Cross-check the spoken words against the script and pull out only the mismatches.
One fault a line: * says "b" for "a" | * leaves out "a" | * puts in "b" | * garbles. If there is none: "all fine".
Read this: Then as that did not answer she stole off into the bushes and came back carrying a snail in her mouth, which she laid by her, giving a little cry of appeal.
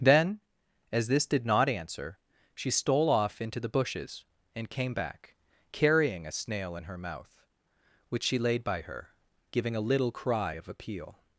* says "this" for "that"